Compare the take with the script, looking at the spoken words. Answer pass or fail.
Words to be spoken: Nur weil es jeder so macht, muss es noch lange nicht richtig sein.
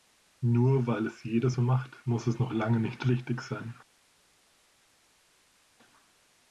pass